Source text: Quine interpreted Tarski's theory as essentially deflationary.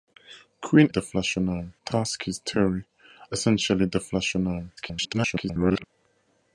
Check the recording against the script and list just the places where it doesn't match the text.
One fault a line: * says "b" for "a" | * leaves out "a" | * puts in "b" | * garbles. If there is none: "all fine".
* says "deflationary" for "interpreted"
* leaves out "as"
* garbles